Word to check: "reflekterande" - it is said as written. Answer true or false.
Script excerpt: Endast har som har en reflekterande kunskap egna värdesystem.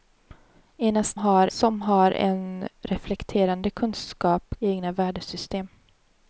true